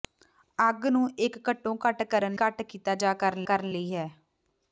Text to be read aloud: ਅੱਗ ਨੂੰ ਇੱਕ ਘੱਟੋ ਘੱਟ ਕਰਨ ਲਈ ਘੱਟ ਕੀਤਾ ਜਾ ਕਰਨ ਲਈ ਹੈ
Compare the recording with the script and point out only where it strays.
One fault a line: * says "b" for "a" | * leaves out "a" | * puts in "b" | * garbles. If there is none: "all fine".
* leaves out "ਲਈ"
* puts in "ਕਰਨ"